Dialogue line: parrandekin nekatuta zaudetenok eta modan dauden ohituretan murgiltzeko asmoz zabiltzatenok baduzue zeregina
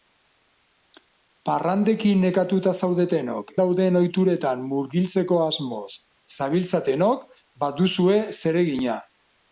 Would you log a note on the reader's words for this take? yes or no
yes